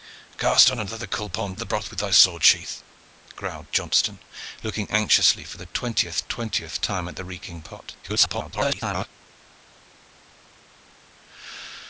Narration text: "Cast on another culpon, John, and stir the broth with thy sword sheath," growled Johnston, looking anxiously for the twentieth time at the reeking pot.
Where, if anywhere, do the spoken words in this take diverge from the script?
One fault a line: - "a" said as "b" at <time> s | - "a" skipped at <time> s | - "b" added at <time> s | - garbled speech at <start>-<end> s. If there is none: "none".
- "John and stir" skipped at 1.6 s
- "twentieth" added at 6.2 s
- garbled speech at 8.0-9.1 s